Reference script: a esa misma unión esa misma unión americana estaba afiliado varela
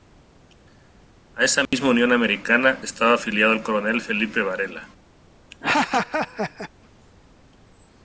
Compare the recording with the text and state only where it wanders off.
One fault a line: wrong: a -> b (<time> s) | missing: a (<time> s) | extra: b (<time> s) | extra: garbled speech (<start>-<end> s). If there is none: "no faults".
wrong: esa misma unión americana estaba afiliado -> americana estaba afiliado el coronel felipe (2.1 s)